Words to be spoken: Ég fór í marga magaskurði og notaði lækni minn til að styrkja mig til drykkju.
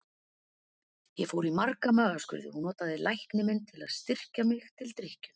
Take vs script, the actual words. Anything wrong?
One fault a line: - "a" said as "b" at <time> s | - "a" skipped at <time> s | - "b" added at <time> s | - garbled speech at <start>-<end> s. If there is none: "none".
none